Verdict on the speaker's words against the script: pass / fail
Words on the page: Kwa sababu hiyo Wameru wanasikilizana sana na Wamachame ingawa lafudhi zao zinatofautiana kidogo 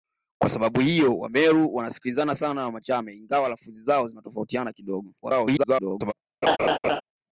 fail